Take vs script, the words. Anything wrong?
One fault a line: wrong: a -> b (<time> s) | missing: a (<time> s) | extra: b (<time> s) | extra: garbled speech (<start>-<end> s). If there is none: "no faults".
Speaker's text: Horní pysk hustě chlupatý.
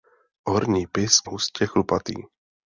no faults